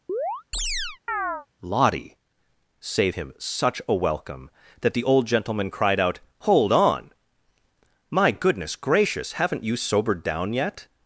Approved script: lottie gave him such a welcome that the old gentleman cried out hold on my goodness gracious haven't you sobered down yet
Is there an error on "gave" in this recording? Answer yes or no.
yes